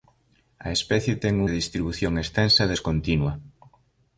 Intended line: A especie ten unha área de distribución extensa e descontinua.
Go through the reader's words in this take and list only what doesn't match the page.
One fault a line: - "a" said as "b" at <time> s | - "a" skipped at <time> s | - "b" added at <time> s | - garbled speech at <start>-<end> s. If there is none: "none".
- "unha área" skipped at 1.4 s